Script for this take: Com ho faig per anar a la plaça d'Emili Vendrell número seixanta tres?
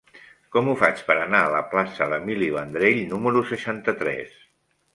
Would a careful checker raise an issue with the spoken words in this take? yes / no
no